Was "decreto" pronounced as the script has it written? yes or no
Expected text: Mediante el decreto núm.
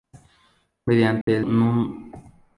no